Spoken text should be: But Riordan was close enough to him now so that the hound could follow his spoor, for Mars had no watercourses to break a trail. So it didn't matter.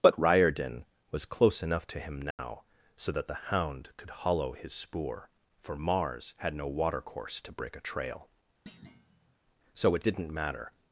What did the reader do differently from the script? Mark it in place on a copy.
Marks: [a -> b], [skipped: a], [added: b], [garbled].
But Riordan was close enough to him now so that the hound could [follow -> hollow] his spoor, for Mars had no [watercourses -> watercourse] to break a trail. So it didn't matter.